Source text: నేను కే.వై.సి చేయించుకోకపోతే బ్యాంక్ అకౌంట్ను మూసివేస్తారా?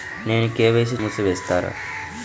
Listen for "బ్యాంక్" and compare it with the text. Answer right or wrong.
wrong